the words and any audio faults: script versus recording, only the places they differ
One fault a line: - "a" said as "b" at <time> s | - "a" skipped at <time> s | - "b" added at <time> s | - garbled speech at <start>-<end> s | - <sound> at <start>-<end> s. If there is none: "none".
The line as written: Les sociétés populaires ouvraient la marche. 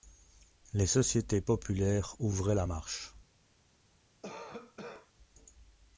- cough at 4.2-5.1 s